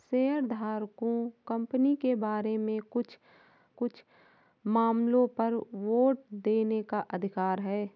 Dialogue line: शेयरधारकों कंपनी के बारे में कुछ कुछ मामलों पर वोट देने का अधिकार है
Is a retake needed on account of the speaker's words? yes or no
no